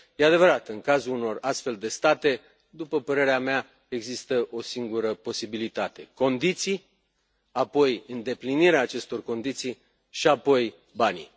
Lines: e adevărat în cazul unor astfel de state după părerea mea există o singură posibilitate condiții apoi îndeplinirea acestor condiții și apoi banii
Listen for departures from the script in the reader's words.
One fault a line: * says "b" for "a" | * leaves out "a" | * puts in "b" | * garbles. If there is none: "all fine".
all fine